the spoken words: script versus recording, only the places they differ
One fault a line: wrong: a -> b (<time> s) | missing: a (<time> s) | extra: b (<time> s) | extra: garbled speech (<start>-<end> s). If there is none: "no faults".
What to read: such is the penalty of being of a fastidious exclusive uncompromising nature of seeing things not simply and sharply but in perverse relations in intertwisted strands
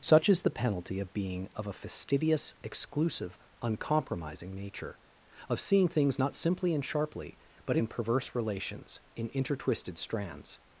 no faults